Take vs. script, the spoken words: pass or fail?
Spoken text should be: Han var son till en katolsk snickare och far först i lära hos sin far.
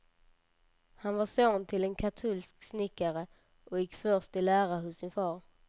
fail